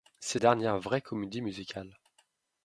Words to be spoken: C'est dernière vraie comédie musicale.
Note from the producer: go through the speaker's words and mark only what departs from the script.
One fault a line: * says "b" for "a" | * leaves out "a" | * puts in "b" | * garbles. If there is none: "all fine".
all fine